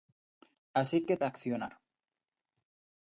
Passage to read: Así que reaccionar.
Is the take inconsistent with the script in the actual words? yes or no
no